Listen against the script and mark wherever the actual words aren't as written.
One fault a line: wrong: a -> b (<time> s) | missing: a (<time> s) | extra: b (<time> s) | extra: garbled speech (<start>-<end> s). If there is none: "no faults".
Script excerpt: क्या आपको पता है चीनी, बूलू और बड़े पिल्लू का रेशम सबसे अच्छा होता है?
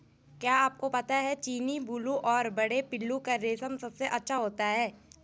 no faults